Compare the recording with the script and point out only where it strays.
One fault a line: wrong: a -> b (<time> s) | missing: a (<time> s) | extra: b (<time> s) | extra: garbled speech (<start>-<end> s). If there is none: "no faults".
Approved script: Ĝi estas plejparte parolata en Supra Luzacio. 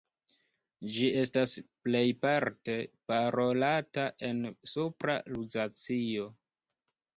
no faults